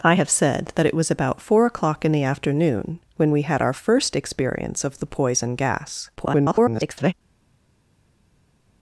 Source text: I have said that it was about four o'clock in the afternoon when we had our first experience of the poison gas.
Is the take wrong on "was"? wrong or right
right